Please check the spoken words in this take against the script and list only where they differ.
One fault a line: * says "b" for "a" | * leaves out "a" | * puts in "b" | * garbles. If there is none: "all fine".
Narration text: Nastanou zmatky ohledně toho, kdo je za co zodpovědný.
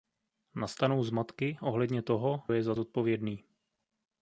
* leaves out "kdo"
* leaves out "co"